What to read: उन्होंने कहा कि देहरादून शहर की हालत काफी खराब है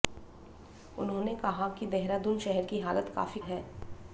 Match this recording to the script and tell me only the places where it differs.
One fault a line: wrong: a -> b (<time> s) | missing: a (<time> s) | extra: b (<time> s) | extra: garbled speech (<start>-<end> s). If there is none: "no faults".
missing: खराब (3.4 s)